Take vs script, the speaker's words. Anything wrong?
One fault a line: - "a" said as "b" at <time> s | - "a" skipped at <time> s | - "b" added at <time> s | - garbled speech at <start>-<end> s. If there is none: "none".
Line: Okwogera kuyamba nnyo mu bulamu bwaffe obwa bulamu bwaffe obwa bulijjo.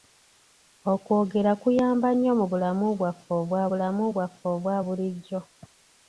none